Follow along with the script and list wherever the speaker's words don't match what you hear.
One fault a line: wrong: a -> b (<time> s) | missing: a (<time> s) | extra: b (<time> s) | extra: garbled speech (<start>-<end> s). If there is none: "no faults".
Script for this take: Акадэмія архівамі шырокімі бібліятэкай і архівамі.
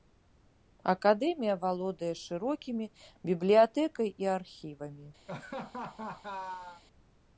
wrong: архівамі -> валодае (1.6 s)